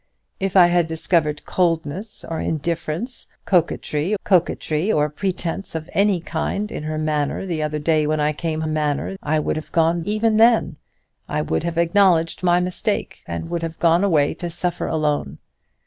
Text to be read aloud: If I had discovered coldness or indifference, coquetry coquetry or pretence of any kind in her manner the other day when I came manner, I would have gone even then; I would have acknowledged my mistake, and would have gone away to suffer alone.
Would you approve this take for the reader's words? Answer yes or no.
yes